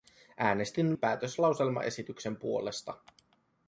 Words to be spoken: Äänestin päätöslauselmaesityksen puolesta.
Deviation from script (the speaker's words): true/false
false